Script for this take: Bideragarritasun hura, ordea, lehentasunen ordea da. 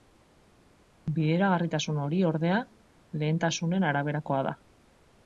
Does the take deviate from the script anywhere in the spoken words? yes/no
yes